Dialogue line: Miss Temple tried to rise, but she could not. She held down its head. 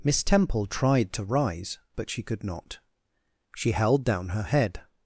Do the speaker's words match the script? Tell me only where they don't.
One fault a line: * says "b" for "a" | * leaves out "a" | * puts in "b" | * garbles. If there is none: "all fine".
* says "her" for "its"